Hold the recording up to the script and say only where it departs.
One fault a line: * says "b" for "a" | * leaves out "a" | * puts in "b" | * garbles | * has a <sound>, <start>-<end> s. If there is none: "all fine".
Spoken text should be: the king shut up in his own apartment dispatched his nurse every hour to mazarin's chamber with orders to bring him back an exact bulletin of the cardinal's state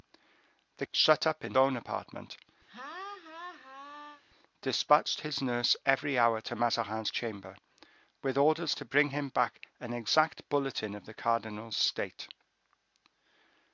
* leaves out "king"
* leaves out "his"
* has a laugh, 2.7-4.2 s